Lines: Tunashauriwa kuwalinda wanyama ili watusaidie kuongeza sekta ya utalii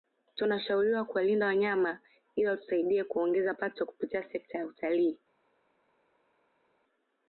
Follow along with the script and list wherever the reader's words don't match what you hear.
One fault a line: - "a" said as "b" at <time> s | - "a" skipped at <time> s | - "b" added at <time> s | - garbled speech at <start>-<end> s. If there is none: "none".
- "pato kupitia" added at 3.5 s